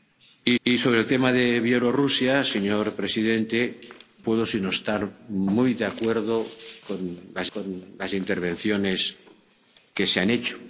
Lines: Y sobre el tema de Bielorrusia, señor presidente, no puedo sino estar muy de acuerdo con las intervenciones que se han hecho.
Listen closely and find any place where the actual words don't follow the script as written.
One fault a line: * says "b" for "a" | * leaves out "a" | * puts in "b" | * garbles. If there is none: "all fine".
* puts in "y"
* leaves out "no"
* puts in "con las"